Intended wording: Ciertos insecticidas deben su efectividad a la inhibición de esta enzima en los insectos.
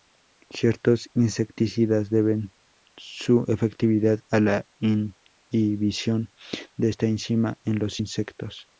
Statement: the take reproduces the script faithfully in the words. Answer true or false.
true